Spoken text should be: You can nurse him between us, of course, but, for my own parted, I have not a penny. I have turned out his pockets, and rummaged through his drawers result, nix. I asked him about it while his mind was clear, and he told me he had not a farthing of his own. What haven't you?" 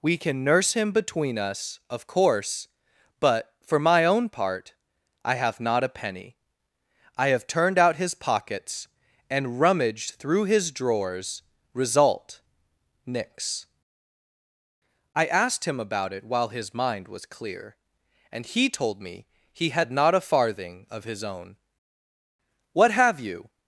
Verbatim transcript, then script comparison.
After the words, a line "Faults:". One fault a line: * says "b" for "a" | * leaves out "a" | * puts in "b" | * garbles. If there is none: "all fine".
We can nurse him between us, of course, but, for my own part, I have not a penny. I have turned out his pockets, and rummaged through his drawers result, nix. I asked him about it while his mind was clear, and he told me he had not a farthing of his own. What have you?"
Faults:
* says "We" for "You"
* says "part" for "parted"
* says "have" for "haven't"